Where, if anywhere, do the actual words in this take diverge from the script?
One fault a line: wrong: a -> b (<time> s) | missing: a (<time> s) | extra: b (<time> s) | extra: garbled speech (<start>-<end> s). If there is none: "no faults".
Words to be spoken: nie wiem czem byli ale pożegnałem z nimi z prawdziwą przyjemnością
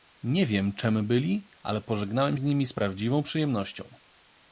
no faults